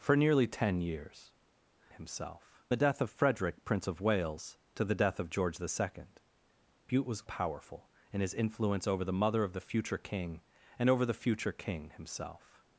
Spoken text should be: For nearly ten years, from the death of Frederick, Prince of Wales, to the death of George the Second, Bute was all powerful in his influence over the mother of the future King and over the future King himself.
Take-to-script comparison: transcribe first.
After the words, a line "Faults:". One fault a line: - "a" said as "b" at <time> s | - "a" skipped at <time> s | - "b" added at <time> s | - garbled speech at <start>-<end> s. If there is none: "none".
For nearly ten years, himself the death of Frederick, Prince of Wales, to the death of George the Second, Bute was powerful in his influence over the mother of the future King and over the future King himself.
Faults:
- "from" said as "himself" at 2.0 s
- "all" skipped at 7.2 s